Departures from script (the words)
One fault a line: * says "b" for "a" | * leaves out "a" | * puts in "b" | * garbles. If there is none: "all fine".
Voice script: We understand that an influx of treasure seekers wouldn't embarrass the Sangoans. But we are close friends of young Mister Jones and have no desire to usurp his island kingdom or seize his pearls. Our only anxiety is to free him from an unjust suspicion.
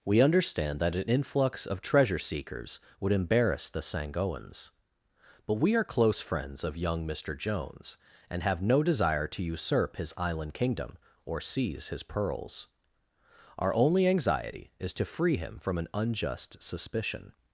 * says "would" for "wouldn't"